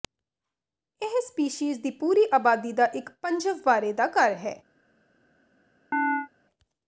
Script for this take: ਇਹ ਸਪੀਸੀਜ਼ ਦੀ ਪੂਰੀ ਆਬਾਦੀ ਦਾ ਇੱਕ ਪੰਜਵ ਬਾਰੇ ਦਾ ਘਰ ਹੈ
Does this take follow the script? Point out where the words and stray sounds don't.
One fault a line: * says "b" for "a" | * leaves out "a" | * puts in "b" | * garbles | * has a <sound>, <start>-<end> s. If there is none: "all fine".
* has a chirp, 5.9-6.3 s